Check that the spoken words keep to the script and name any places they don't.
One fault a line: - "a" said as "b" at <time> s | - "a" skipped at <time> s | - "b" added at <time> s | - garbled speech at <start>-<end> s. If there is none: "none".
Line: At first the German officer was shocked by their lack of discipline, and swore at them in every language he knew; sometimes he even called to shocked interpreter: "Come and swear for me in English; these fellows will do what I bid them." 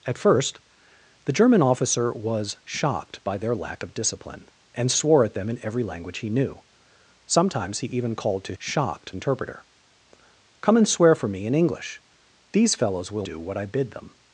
none